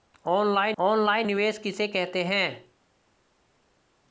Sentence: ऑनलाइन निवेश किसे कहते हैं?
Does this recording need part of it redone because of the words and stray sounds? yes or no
yes